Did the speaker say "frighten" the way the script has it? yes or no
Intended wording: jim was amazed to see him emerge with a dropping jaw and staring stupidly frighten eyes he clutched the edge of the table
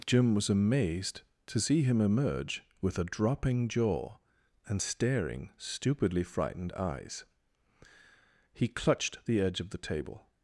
no